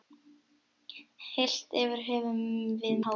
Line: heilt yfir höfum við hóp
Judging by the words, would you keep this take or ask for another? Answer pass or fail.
pass